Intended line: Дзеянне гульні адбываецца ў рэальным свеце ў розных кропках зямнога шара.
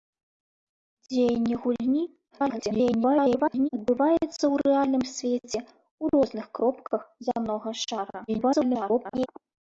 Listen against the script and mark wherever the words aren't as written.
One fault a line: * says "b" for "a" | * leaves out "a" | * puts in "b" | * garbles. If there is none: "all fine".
* garbles
* garbles